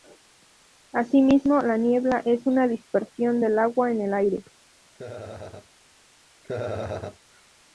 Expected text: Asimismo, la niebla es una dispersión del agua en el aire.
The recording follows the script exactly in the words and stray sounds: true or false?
false